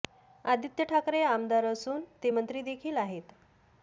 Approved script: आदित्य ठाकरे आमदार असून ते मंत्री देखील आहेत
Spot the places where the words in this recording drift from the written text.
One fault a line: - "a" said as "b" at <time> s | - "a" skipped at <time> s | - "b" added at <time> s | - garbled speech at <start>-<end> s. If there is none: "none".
none